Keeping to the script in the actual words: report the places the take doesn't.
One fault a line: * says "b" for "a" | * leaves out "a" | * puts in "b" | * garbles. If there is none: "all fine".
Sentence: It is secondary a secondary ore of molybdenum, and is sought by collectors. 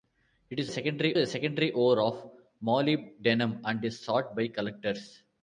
all fine